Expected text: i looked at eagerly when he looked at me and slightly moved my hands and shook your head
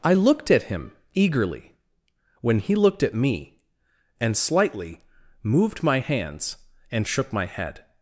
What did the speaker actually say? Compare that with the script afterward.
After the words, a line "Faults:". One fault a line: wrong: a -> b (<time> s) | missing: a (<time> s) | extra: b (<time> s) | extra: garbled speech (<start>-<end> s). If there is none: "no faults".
i looked at him eagerly when he looked at me and slightly moved my hands and shook my head
Faults:
extra: him (0.6 s)
wrong: your -> my (7.3 s)